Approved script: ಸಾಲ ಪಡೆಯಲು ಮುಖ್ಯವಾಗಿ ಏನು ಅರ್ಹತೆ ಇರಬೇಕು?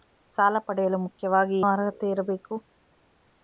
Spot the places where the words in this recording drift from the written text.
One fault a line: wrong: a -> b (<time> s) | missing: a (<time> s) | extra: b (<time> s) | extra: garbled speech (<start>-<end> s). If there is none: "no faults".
missing: ಏನು (1.6 s)